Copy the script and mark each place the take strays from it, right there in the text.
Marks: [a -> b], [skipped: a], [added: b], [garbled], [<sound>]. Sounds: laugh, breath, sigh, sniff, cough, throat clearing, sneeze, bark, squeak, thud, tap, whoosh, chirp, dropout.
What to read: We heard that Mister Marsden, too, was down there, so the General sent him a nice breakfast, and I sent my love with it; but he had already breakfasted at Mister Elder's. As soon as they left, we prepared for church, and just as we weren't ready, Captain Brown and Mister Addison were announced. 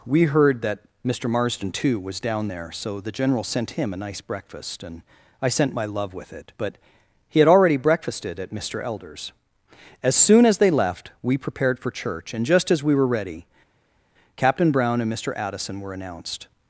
We heard that Mister Marsden, too, was down there, so the General sent him a nice breakfast, and I sent my love with it; but he had already breakfasted at Mister Elder's. As soon as they left, we prepared for church, and just as we [weren't -> were] ready, Captain Brown and Mister Addison were announced.